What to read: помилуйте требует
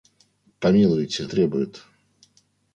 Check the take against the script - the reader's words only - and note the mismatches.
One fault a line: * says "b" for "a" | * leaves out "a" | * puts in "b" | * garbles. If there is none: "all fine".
all fine